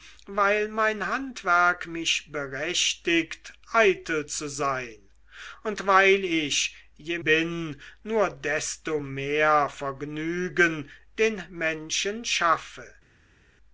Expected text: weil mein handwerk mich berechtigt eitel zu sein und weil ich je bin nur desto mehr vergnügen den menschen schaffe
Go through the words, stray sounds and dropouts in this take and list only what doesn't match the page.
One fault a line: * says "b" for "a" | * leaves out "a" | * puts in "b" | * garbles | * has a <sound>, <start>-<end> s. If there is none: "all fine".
all fine